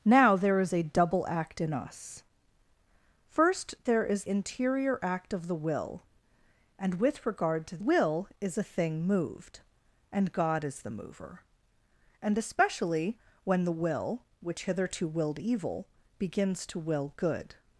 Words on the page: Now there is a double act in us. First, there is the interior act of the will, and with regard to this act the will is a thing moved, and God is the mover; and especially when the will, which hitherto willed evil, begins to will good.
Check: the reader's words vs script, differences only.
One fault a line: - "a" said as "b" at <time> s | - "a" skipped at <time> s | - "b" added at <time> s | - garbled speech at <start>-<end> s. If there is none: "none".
- "the" skipped at 4.2 s
- "this act the" skipped at 7.8 s